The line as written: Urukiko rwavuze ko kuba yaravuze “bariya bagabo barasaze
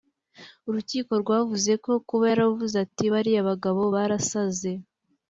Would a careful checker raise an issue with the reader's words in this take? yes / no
yes